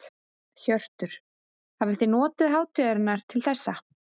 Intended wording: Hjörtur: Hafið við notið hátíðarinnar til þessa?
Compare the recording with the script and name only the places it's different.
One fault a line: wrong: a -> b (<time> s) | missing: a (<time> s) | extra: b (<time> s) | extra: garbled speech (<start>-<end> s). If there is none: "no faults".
wrong: við -> þið (2.0 s)